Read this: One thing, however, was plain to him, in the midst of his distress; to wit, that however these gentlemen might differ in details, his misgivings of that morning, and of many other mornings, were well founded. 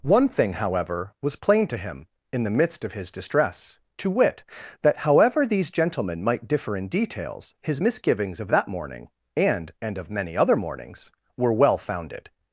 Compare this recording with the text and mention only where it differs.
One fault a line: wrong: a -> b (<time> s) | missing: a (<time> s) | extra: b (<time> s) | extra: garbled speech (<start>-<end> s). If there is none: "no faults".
extra: and (9.8 s)